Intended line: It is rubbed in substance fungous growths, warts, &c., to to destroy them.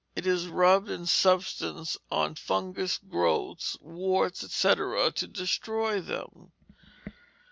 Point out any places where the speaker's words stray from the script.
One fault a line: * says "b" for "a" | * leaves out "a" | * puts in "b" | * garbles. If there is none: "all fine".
* puts in "on"
* leaves out "to"